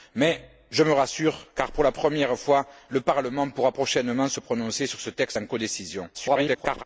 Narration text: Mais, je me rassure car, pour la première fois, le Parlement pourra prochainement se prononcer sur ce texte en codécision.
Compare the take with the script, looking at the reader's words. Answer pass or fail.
fail